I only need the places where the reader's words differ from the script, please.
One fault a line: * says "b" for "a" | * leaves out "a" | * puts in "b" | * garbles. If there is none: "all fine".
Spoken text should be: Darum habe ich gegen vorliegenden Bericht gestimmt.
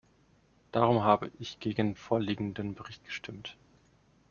all fine